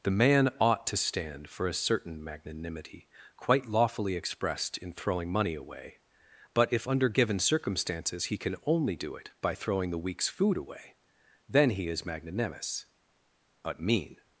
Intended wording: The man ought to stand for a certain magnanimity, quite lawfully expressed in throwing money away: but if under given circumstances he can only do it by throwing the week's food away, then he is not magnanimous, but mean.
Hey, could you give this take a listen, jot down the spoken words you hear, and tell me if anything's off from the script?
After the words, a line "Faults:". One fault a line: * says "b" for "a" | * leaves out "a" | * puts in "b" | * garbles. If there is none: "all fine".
The man ought to stand for a certain magnanimity, quite lawfully expressed in throwing money away: but if under given circumstances he can only do it by throwing the week's food away, then he is magnanimous, but mean.
Faults:
* leaves out "not"